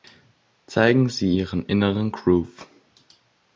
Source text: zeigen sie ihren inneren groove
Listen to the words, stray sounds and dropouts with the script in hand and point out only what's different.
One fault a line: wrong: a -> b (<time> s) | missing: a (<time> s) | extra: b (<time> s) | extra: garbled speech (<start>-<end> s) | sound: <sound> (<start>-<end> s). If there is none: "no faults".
no faults